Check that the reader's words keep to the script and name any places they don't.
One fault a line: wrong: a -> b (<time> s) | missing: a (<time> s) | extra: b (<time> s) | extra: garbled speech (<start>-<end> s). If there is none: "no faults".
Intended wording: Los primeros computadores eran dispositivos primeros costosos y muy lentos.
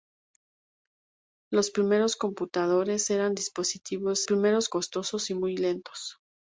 no faults